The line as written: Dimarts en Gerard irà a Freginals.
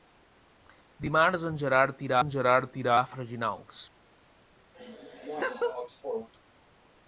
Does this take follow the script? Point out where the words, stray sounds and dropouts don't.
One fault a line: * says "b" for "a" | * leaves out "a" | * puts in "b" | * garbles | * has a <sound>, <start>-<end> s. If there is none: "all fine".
* puts in "en Gerard irà"
* has a laugh, 4.7-6.3 s